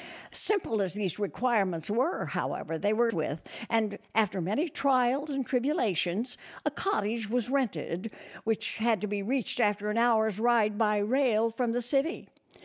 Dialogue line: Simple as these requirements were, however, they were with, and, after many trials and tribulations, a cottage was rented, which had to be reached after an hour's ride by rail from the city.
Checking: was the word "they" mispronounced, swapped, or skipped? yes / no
no